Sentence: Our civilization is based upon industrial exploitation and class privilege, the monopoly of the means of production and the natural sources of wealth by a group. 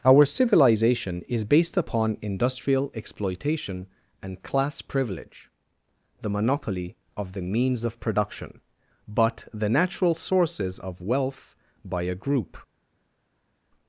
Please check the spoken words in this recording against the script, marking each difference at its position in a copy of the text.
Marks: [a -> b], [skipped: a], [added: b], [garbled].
Our civilization is based upon industrial exploitation and class privilege, the monopoly of the means of production [and -> but] the natural sources of wealth by a group.